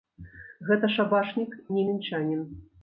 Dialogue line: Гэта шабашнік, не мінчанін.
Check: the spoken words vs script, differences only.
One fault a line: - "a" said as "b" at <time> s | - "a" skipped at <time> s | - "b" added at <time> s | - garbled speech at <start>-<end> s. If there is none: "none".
none